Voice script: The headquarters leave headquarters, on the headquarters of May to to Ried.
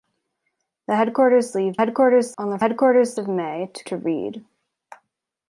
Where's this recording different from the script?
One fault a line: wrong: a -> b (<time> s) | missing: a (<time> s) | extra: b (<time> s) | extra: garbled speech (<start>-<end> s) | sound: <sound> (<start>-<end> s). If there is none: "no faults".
no faults